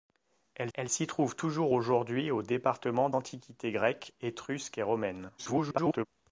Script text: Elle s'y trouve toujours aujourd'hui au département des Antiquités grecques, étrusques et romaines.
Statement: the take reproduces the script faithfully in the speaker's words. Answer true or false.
false